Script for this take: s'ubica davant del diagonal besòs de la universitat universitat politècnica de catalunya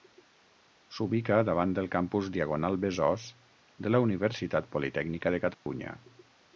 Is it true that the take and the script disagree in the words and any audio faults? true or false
true